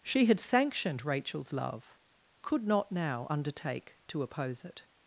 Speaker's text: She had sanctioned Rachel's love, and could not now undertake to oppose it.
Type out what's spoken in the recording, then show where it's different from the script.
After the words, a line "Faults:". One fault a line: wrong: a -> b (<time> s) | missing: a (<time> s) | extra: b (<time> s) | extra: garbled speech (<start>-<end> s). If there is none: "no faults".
She had sanctioned Rachel's love, could not now undertake to oppose it.
Faults:
missing: and (2.0 s)